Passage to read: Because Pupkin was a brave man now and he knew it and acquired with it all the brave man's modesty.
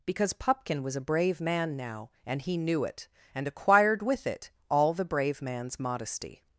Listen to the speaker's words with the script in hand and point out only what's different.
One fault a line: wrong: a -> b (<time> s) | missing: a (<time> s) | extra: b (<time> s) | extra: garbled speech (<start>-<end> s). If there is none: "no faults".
no faults